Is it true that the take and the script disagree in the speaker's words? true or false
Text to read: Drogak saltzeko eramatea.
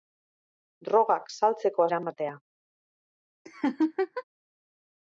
false